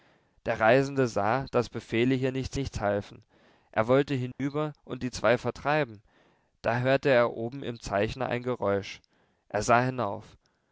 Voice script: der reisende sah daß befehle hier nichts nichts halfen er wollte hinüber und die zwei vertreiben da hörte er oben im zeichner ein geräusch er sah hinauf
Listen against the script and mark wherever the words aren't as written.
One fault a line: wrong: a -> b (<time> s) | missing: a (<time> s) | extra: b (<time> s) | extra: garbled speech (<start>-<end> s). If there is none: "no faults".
no faults